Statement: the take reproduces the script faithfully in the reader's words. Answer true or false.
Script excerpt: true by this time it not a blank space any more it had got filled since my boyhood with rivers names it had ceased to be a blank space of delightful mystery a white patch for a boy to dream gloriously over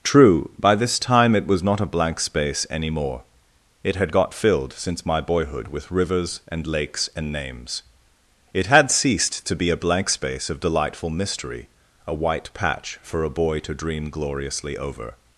false